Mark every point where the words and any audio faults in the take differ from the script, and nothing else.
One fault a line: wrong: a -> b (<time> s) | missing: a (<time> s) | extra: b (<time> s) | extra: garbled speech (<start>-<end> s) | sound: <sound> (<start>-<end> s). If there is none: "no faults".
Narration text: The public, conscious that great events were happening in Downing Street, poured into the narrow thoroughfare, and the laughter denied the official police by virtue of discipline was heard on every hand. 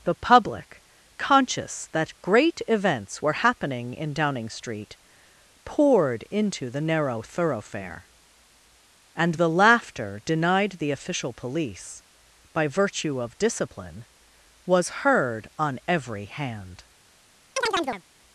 sound: chirp (17.6-18.0 s)